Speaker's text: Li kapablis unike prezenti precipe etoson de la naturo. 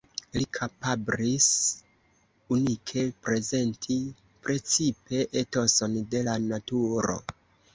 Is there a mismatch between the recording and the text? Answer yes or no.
no